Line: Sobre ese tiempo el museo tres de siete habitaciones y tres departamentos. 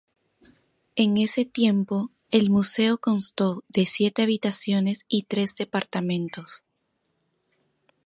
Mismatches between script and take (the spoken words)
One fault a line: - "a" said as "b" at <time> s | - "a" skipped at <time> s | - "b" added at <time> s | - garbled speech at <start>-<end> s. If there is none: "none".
- "Sobre" said as "En" at 0.9 s
- "tres" said as "constó" at 3.0 s